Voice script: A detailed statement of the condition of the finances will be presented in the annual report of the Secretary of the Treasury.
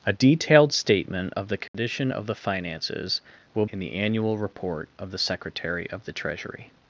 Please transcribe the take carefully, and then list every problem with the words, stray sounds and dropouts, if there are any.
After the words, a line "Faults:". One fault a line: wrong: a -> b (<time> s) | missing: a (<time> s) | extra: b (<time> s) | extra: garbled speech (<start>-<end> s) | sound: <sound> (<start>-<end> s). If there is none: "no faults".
A detailed statement of the condition of the finances will in the annual report of the Secretary of the Treasury.
Faults:
sound: dropout (1.7-1.7 s)
missing: be presented (3.6 s)